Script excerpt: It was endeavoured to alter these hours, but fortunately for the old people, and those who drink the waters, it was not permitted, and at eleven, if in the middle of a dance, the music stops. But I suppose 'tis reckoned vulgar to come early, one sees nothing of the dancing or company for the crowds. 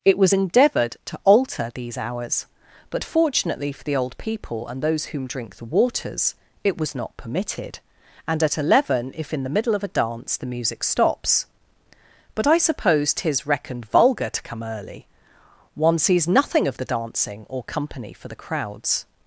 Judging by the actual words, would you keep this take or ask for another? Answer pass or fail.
fail